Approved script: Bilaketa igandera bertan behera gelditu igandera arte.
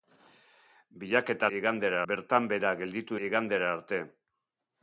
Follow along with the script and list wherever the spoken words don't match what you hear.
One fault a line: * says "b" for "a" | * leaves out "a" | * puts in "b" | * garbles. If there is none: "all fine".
all fine